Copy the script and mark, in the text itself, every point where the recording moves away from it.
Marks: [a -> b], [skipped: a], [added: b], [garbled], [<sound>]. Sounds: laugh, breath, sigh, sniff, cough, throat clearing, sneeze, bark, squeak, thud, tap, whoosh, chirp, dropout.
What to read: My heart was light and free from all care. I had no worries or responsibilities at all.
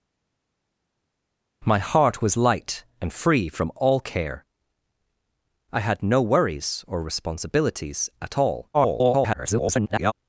My heart was light and free from all care. I had no worries or responsibilities at all. [garbled]